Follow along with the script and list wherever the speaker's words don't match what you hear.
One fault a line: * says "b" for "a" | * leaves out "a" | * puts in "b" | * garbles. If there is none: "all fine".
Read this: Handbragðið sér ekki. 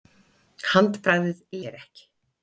all fine